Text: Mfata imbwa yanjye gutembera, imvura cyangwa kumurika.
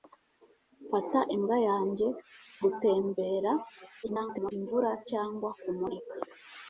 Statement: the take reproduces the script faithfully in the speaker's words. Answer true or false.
false